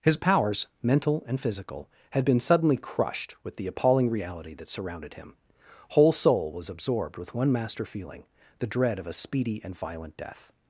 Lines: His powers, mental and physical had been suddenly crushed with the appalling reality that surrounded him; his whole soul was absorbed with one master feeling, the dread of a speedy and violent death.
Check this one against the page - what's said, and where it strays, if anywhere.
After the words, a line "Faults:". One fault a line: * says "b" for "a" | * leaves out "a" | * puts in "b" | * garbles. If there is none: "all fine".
His powers, mental and physical had been suddenly crushed with the appalling reality that surrounded him; whole soul was absorbed with one master feeling, the dread of a speedy and violent death.
Faults:
* leaves out "his"